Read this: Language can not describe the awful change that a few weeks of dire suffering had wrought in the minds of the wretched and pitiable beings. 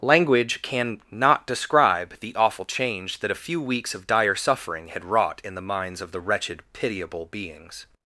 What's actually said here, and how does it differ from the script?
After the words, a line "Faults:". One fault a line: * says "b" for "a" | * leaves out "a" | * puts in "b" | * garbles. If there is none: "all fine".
Language can not describe the awful change that a few weeks of dire suffering had wrought in the minds of the wretched pitiable beings.
Faults:
* leaves out "and"